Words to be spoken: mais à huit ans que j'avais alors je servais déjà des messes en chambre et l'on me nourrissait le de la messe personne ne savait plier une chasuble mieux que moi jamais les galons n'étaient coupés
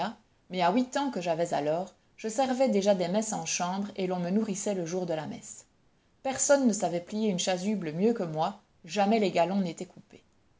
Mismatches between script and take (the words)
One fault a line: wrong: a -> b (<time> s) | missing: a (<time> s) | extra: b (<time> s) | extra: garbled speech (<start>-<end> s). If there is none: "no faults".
extra: jour (4.8 s)